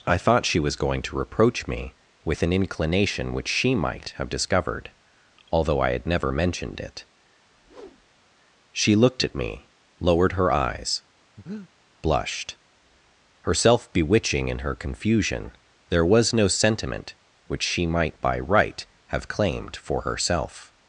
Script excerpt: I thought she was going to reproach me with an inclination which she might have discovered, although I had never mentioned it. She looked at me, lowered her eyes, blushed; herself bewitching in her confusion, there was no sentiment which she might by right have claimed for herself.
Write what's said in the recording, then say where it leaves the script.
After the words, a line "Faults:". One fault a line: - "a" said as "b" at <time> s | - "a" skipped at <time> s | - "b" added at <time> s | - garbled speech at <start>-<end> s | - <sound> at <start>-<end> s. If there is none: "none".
I thought she was going to reproach me with an inclination which she might have discovered, although I had never mentioned it. She looked at me, lowered her eyes, blushed; herself bewitching in her confusion, there was no sentiment which she might by right have claimed for herself.
Faults:
- whoosh at 7.4-8.3 s
- breath at 11.4-11.7 s